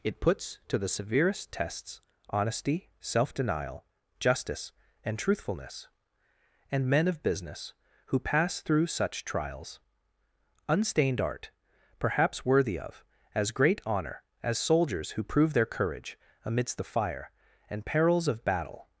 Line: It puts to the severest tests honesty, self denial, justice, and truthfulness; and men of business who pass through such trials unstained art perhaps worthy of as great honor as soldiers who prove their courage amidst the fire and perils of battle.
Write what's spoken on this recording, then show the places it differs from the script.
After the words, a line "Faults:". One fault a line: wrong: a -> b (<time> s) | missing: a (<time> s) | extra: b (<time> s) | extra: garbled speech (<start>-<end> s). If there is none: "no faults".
It puts to the severest tests honesty, self denial, justice, and truthfulness; and men of business who pass through such trials unstained art perhaps worthy of as great honor as soldiers who prove their courage amidst the fire and perils of battle.
Faults:
no faults